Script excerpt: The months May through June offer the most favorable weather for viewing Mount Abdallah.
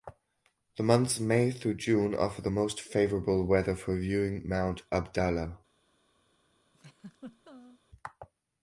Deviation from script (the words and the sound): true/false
true